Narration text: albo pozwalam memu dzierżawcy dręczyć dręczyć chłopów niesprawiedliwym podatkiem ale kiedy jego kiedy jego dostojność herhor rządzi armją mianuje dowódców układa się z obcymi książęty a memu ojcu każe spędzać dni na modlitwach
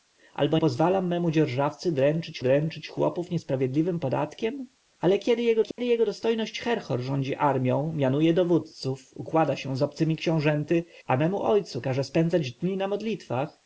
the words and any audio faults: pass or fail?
fail